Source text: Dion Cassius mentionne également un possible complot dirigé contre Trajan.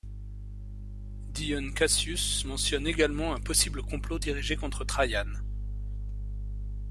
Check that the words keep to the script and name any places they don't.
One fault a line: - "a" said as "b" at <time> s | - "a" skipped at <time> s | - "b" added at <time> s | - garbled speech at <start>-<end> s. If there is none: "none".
none